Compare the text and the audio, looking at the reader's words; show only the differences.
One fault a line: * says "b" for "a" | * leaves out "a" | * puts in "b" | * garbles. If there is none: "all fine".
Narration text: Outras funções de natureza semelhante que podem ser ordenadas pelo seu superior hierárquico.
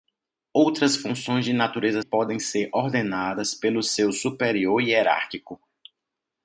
* leaves out "semelhante que"